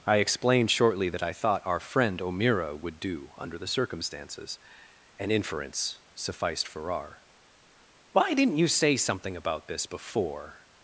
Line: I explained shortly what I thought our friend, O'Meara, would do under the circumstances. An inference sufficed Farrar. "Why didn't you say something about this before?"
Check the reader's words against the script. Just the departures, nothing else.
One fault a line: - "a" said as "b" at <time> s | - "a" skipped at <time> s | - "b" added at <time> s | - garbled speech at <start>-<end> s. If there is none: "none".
- "what" said as "that" at 1.1 s